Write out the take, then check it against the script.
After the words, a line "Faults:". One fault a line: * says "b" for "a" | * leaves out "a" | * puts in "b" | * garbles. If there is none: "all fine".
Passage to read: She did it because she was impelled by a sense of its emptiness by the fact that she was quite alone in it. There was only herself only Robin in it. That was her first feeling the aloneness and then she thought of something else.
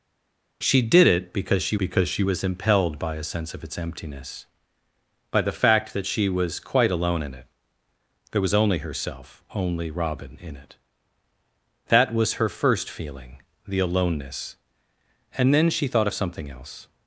She did it because she because she was impelled by a sense of its emptiness by the fact that she was quite alone in it. There was only herself only Robin in it. That was her first feeling the aloneness and then she thought of something else.
Faults:
* puts in "because she"